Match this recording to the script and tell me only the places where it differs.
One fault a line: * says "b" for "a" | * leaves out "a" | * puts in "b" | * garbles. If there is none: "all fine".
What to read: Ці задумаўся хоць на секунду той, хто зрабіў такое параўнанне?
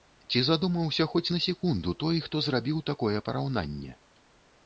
all fine